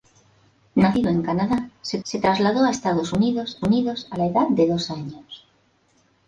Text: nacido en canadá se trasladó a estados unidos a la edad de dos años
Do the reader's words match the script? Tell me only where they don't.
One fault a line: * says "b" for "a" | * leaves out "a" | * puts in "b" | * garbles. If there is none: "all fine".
* puts in "se"
* puts in "unidos"